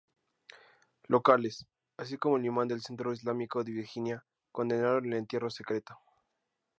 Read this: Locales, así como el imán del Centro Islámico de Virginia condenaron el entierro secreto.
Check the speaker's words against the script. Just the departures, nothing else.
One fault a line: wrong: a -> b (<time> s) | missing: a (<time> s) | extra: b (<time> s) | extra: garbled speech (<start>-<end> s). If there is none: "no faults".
no faults